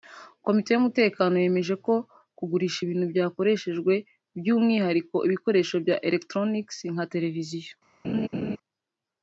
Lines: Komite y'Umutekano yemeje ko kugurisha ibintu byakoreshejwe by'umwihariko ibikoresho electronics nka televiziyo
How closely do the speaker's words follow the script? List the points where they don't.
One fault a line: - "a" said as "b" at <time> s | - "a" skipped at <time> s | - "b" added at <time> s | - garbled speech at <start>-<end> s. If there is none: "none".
- "bya" added at 5.8 s